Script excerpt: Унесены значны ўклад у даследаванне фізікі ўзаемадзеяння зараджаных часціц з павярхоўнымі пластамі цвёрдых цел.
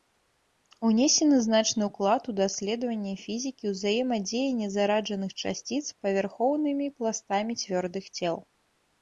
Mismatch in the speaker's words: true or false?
false